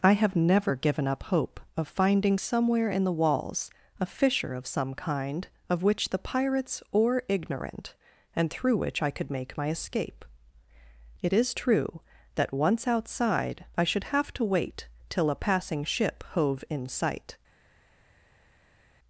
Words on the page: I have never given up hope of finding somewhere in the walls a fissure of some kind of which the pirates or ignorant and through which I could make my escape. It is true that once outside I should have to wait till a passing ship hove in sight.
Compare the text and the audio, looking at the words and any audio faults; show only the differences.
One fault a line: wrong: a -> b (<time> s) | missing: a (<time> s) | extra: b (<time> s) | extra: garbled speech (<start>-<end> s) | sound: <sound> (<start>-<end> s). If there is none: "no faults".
no faults